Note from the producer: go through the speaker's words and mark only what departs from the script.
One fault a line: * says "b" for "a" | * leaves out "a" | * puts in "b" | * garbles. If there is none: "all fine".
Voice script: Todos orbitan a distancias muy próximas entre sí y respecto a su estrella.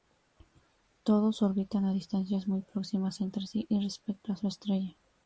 all fine